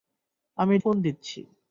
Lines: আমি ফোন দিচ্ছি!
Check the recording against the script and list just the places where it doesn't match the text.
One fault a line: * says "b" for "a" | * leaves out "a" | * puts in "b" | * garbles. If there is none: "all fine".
all fine